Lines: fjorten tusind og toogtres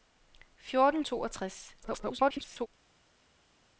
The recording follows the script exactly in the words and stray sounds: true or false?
false